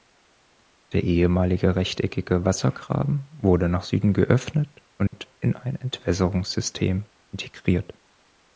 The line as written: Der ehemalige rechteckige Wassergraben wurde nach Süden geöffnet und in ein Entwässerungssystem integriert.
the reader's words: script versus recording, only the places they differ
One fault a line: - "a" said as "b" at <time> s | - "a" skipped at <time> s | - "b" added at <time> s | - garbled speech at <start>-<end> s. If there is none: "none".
none